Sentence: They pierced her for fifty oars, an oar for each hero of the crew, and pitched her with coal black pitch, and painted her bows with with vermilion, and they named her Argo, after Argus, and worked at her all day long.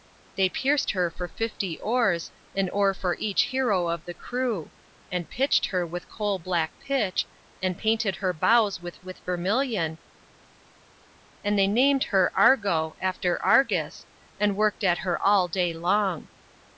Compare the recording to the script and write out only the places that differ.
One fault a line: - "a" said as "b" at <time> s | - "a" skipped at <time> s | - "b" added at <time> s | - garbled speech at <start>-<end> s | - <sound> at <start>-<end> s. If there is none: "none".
none